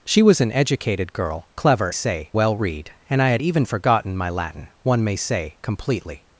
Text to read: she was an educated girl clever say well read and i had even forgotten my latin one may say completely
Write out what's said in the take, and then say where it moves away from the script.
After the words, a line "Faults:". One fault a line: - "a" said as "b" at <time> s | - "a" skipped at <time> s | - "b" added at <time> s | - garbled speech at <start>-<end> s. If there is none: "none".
she was an educated girl clever say well read and i had even forgotten my latin one may say completely
Faults:
none